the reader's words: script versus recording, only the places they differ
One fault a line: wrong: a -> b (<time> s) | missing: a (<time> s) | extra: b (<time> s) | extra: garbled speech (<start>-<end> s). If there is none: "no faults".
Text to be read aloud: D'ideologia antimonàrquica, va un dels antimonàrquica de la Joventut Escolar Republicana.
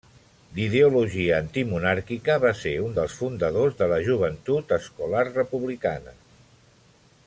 extra: ser (2.6 s)
wrong: antimonàrquica -> fundadors (3.2 s)